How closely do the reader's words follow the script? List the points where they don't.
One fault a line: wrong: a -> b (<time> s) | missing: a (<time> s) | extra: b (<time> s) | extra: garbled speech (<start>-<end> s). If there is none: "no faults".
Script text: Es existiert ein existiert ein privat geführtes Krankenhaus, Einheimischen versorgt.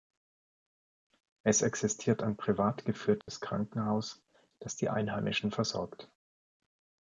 missing: existiert ein (2.4 s)
extra: das die (4.6 s)